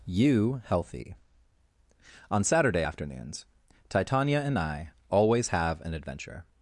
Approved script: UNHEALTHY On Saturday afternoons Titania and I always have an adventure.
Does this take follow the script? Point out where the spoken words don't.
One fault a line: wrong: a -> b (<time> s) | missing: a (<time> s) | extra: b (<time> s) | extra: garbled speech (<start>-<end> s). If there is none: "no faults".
wrong: UNHEALTHY -> You healthy (0.1 s)